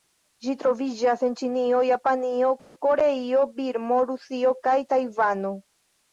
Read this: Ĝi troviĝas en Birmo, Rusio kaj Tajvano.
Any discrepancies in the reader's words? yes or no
yes